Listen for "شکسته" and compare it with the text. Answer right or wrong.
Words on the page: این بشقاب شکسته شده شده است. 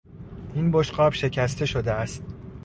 right